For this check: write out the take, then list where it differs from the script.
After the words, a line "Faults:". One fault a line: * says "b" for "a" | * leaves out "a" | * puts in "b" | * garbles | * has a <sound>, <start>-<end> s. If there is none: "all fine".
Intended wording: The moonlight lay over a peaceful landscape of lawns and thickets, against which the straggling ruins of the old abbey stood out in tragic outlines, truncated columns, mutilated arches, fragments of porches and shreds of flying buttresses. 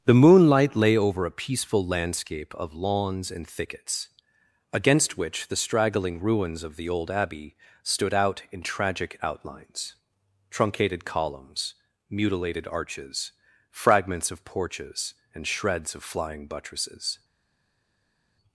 The moonlight lay over a peaceful landscape of lawns and thickets, against which the straggling ruins of the old abbey stood out in tragic outlines, truncated columns, mutilated arches, fragments of porches and shreds of flying buttresses.
Faults:
all fine